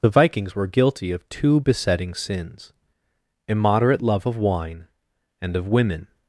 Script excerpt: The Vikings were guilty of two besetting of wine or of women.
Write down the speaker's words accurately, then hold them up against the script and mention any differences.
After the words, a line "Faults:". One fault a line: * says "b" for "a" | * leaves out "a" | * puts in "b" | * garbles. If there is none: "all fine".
The Vikings were guilty of two besetting sins immoderate love of wine and of women.
Faults:
* puts in "sins immoderate love"
* says "and" for "or"